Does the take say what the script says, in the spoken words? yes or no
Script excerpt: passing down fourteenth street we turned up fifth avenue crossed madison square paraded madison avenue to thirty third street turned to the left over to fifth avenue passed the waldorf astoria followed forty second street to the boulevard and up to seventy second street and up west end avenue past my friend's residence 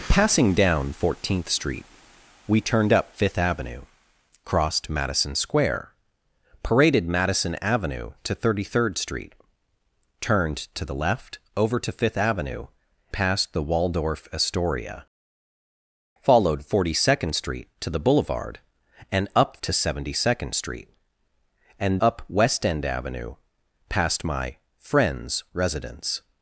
yes